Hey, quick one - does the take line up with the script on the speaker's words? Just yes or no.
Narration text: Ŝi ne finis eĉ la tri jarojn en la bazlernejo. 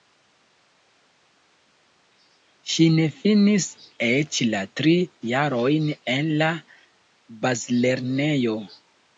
yes